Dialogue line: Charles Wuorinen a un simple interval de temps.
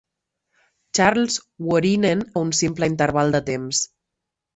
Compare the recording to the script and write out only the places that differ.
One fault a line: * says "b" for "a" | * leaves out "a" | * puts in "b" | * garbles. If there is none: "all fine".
all fine